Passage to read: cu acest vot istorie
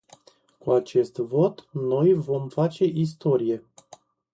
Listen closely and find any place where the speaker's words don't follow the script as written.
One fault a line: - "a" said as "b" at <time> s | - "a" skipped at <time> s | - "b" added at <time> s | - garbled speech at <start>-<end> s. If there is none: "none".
- "noi vom face" added at 1.7 s